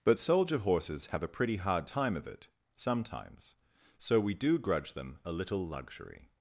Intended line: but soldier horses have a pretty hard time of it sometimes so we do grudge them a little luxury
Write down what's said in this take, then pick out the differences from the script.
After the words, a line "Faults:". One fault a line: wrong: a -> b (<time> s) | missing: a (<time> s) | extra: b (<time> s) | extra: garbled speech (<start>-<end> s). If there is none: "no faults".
but soldier horses have a pretty hard time of it sometimes so we do grudge them a little luxury
Faults:
no faults